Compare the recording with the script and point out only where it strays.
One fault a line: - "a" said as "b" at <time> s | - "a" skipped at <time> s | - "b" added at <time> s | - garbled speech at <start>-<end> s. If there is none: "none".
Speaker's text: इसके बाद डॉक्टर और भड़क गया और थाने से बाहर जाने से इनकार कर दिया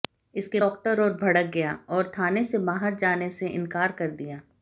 - "बाद" skipped at 0.6 s